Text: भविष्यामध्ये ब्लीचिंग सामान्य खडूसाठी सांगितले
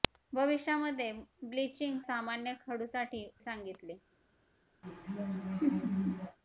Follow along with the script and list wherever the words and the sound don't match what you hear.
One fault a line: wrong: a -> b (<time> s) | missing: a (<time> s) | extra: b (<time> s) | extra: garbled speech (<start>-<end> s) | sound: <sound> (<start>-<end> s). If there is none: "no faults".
sound: laugh (4.8-6.4 s)